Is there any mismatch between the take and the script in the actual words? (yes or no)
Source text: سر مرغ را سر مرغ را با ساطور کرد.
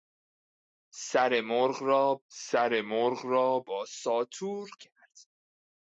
no